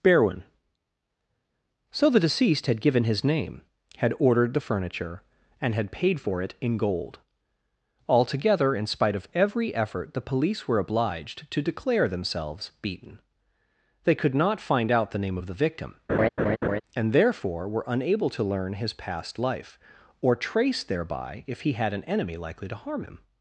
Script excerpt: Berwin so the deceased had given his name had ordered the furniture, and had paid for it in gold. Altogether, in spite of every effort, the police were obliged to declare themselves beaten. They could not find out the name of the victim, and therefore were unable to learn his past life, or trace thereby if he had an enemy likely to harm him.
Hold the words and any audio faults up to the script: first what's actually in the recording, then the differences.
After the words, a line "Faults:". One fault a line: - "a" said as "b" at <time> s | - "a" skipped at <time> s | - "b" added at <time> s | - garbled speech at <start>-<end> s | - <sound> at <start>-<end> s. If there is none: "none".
Berwin so the deceased had given his name had ordered the furniture, and had paid for it in gold. Altogether, in spite of every effort, the police were obliged to declare themselves beaten. They could not find out the name of the victim, and therefore were unable to learn his past life, or trace thereby if he had an enemy likely to harm him.
Faults:
- laugh at 16.1-16.8 s